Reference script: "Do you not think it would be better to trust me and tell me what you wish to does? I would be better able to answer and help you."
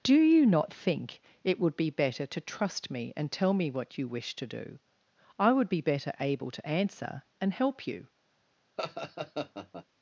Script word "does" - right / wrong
wrong